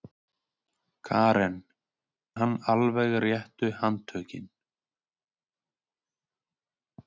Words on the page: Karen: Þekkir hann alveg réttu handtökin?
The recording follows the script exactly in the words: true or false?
false